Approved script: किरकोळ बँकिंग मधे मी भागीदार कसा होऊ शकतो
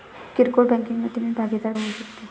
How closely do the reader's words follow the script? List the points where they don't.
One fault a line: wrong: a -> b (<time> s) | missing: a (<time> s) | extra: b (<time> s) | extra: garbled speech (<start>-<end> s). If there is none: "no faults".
missing: कसा (1.7 s)